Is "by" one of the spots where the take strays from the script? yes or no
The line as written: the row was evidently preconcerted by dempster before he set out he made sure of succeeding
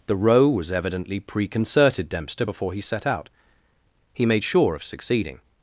yes